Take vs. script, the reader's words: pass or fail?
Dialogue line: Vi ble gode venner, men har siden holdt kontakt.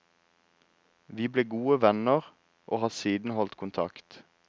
fail